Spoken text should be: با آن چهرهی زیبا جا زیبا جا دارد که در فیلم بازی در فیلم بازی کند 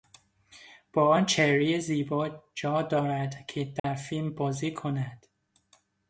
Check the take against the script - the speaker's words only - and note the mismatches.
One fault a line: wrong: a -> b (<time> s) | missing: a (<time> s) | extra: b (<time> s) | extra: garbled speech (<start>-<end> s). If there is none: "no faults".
missing: زیبا جا (2.8 s)
missing: در فیلم بازی (4.7 s)